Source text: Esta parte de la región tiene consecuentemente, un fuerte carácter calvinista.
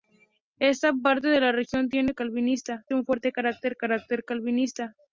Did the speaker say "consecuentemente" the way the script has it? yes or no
no